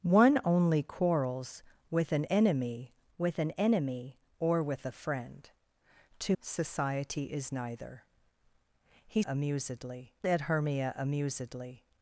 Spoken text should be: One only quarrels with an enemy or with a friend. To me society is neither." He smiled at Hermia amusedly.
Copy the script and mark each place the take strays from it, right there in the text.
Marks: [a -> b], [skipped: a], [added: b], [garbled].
One only quarrels with an enemy [added: with an enemy] or with a friend. To [skipped: me] society is neither." He [smiled -> amusedly] at Hermia amusedly.